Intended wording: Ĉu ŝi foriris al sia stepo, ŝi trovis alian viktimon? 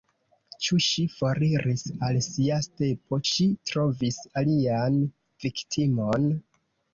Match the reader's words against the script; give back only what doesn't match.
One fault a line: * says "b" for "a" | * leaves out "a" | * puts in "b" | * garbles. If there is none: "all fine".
all fine